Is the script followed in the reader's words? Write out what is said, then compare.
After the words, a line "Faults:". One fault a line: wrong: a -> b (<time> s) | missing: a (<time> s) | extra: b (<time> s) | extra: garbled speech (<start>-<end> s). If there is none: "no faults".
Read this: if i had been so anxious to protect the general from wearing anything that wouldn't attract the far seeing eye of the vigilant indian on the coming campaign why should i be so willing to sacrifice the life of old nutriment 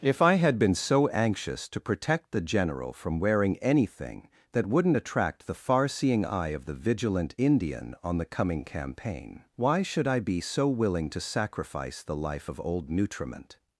if i had been so anxious to protect the general from wearing anything that wouldn't attract the far seeing eye of the vigilant indian on the coming campaign why should i be so willing to sacrifice the life of old nutriment
Faults:
no faults